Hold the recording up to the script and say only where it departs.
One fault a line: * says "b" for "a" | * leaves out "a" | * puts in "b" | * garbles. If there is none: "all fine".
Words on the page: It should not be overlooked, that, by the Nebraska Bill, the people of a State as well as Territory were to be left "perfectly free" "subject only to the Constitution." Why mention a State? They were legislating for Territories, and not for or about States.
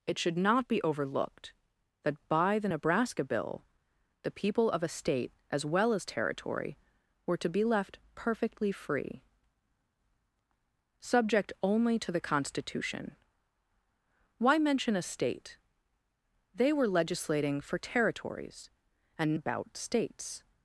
* leaves out "not for or"